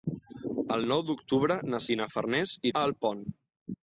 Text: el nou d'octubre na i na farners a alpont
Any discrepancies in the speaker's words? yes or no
no